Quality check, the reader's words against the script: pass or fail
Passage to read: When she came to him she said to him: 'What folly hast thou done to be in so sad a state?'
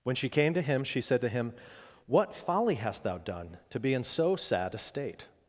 pass